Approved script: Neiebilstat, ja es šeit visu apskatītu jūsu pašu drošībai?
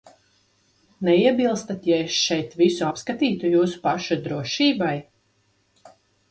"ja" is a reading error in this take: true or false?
false